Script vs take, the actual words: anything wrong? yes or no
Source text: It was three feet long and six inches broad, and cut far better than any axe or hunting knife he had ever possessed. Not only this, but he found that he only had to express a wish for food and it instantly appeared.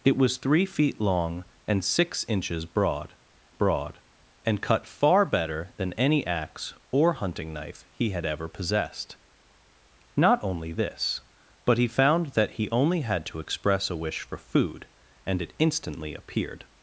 yes